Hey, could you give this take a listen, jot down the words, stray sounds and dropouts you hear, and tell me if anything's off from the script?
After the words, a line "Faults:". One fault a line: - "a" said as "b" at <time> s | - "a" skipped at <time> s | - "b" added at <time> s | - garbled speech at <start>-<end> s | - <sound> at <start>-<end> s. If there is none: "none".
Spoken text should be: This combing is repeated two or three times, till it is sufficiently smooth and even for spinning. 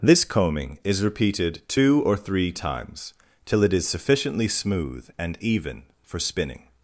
This combing is repeated two or three times, till it is sufficiently smooth and even for spinning.
Faults:
none